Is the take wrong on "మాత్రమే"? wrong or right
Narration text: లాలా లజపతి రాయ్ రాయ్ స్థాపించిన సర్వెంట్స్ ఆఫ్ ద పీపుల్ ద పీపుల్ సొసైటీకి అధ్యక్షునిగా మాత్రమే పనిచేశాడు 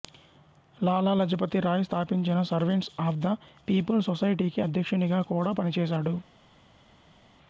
wrong